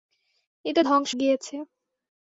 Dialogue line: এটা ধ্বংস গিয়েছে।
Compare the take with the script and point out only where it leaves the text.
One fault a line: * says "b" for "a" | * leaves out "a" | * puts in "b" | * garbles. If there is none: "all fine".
all fine